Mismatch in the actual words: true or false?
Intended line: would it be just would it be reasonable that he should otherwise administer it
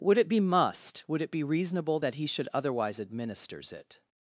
true